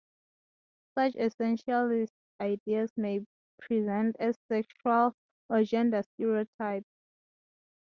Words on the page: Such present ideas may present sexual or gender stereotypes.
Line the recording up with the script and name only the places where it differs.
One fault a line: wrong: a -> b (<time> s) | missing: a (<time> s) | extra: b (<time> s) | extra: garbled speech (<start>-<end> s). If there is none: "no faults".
wrong: present -> essentialist (1.1 s)
extra: as (4.2 s)